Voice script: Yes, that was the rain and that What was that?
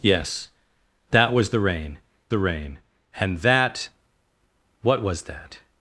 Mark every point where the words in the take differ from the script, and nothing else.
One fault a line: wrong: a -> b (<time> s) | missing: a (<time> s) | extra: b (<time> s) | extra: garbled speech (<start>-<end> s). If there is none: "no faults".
extra: the rain (2.3 s)